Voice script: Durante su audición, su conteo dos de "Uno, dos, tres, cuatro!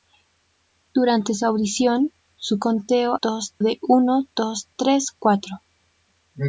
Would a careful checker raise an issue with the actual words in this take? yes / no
no